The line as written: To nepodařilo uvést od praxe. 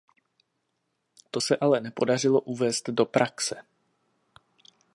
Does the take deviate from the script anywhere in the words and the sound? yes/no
yes